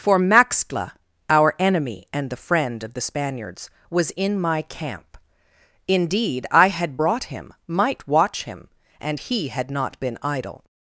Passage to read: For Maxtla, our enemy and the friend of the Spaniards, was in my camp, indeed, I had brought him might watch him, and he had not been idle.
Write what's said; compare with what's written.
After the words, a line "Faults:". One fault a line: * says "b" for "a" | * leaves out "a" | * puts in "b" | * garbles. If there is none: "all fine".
For Maxtla, our enemy and the friend of the Spaniards, was in my camp, indeed, I had brought him might watch him, and he had not been idle.
Faults:
all fine